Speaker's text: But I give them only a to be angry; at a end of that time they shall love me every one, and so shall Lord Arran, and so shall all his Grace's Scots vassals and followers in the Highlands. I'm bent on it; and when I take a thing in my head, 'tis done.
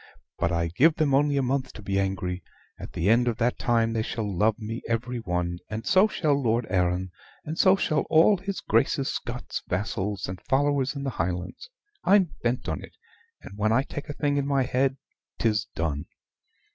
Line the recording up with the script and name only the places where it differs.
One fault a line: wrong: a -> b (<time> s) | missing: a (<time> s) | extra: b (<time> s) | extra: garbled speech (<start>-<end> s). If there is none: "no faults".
extra: month (1.4 s)
wrong: a -> the (2.9 s)